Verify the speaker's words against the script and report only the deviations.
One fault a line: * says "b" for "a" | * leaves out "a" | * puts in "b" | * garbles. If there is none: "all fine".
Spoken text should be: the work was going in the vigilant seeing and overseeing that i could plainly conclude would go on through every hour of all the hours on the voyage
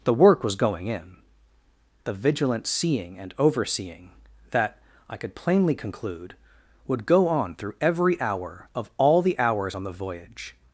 all fine